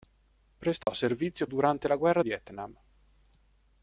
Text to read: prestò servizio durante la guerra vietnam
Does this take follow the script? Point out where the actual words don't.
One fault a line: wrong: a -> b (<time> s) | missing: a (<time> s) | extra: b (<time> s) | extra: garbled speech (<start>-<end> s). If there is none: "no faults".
no faults